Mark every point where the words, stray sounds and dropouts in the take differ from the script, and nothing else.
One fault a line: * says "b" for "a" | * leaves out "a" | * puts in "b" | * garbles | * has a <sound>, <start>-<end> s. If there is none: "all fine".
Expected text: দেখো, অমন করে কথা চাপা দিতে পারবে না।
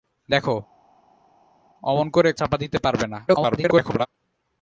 * leaves out "কথা"
* garbles